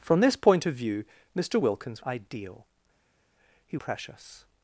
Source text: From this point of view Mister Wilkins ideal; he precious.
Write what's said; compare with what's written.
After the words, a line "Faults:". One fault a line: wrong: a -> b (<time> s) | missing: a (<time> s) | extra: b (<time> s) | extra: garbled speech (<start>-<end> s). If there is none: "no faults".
From this point of view Mister Wilkins ideal; he precious.
Faults:
no faults